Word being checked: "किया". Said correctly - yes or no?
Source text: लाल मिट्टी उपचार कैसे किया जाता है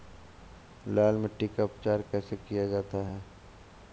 yes